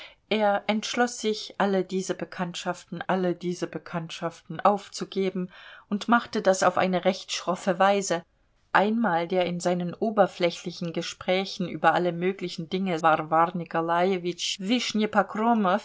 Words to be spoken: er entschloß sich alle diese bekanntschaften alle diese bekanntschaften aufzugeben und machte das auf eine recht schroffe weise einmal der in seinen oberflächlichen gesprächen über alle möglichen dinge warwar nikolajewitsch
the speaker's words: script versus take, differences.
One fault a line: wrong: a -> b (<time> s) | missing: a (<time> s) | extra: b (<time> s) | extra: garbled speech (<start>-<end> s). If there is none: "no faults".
no faults